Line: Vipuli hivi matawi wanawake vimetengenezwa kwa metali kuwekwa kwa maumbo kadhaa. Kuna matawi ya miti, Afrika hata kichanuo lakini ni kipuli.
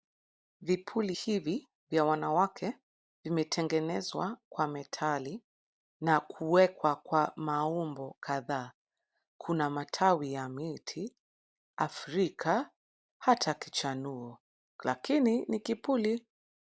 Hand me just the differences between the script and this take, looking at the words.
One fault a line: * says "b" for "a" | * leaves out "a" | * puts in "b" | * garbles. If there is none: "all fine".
* says "vya" for "matawi"
* puts in "na"